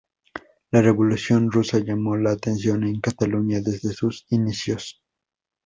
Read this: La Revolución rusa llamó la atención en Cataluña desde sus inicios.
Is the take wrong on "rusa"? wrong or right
right